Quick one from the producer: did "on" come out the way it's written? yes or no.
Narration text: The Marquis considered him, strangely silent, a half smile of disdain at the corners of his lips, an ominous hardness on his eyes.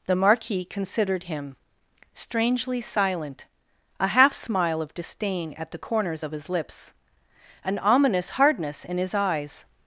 no